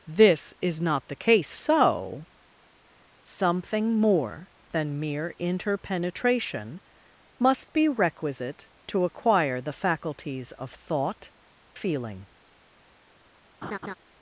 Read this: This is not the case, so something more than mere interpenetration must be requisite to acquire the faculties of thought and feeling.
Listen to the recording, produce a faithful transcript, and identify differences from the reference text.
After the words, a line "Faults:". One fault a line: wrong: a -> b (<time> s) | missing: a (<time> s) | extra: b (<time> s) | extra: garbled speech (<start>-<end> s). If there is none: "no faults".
This is not the case, so something more than mere interpenetration must be requisite to acquire the faculties of thought feeling.
Faults:
missing: and (11.3 s)